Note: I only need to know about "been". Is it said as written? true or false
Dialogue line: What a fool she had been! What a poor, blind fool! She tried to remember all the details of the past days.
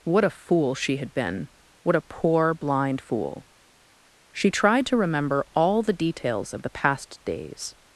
true